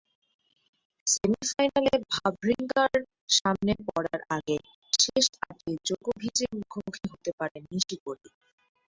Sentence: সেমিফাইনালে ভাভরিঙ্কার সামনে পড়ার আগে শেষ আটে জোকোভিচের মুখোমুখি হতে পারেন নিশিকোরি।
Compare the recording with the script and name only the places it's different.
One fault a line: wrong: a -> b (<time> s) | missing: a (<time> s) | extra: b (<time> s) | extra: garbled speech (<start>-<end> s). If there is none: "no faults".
no faults